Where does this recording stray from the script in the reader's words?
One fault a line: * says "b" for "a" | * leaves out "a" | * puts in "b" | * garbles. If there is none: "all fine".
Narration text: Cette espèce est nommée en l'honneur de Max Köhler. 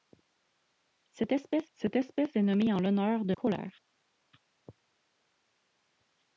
* puts in "cette espèce"
* leaves out "Max"